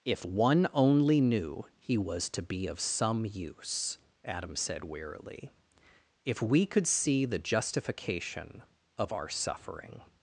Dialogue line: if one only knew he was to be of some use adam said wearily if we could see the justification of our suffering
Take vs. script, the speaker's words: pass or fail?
pass